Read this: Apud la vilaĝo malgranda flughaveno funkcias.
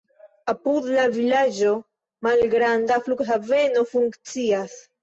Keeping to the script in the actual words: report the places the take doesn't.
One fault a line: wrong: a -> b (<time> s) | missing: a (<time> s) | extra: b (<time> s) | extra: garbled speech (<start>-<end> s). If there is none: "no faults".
no faults